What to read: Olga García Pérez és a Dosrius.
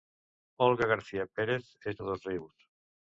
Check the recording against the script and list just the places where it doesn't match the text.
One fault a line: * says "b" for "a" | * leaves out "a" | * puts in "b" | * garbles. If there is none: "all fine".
all fine